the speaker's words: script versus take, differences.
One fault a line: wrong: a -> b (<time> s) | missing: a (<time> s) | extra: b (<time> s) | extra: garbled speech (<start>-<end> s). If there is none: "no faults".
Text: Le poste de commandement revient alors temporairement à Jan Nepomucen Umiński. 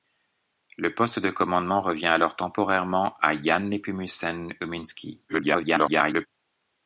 extra: garbled speech (5.3-6.3 s)